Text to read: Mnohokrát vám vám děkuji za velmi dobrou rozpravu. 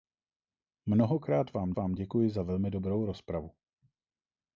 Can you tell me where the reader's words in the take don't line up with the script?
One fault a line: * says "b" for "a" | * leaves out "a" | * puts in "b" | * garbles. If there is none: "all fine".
all fine